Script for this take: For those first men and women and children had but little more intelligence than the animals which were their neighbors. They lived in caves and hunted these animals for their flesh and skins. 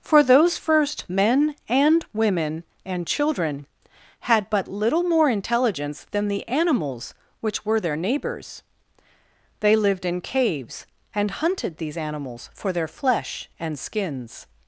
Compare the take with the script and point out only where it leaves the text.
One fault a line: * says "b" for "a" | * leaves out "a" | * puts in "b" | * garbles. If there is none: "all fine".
all fine